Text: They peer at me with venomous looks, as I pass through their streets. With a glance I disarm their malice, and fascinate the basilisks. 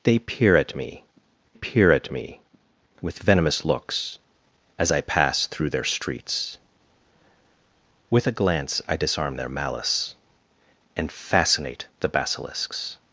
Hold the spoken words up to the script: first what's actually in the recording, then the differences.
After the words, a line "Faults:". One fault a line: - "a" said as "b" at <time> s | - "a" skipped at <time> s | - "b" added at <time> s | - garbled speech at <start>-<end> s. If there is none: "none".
They peer at me peer at me with venomous looks, as I pass through their streets. With a glance I disarm their malice, and fascinate the basilisks.
Faults:
- "peer at me" added at 1.5 s